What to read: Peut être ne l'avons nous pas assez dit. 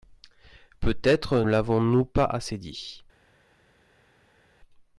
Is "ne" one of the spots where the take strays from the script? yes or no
yes